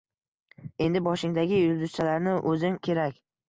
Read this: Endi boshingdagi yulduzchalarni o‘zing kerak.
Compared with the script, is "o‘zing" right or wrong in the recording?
right